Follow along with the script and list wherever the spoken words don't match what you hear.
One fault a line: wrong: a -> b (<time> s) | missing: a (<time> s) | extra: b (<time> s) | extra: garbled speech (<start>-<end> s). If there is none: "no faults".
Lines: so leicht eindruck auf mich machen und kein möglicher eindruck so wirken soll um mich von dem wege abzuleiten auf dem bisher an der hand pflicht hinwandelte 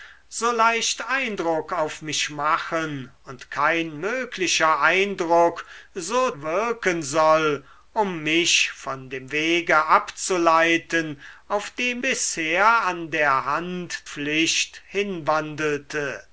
no faults